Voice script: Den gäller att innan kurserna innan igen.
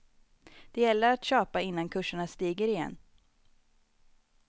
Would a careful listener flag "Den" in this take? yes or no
yes